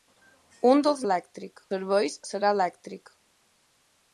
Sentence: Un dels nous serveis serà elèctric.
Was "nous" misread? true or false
true